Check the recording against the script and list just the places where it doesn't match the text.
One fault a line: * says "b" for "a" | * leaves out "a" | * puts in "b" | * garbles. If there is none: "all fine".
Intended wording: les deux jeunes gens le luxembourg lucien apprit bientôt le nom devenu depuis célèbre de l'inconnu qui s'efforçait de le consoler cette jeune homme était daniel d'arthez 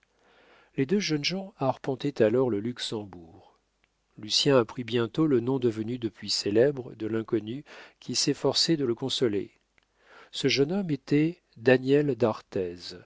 * puts in "arpentaient alors"
* says "ce" for "cette"